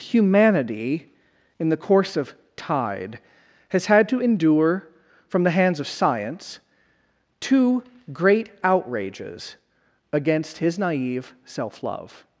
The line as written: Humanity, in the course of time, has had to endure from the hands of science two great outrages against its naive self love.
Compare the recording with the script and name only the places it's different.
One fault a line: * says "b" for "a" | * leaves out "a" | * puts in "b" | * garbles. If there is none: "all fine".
* says "tide" for "time"
* says "his" for "its"